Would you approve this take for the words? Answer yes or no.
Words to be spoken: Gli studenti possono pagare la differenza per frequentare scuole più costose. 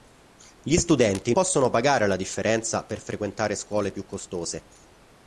yes